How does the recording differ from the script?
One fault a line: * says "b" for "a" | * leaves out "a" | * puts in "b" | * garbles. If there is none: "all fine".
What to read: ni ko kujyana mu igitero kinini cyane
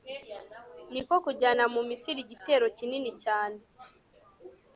* puts in "misiri"